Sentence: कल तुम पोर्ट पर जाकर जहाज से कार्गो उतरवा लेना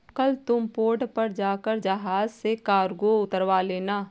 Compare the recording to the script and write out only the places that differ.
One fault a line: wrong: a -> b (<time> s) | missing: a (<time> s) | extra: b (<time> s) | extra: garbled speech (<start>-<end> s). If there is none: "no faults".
no faults